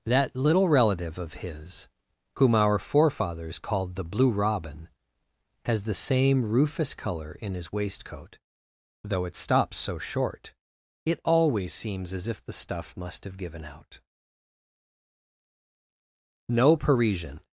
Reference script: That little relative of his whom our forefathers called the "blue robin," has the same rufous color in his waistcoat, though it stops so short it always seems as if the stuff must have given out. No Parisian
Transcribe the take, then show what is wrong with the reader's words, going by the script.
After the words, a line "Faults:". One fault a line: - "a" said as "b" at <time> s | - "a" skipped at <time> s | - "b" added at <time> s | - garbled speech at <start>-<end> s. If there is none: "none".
That little relative of his whom our forefathers called the "blue robin," has the same rufous color in his waistcoat, though it stops so short it always seems as if the stuff must have given out. No Parisian
Faults:
none